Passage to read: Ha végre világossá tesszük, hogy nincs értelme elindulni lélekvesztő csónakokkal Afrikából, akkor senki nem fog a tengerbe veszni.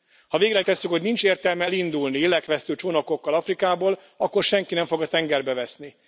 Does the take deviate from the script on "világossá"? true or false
true